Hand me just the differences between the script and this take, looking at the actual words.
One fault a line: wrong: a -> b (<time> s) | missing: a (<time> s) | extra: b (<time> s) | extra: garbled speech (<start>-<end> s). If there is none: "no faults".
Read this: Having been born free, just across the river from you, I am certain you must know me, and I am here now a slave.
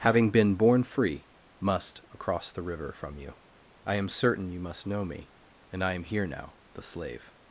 wrong: just -> must (1.6 s)
wrong: a -> the (6.7 s)